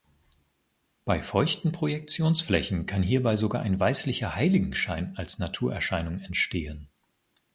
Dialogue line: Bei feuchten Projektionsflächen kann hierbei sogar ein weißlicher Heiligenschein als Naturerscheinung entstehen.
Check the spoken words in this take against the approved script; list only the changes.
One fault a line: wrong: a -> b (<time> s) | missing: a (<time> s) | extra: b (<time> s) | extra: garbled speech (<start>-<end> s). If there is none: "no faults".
no faults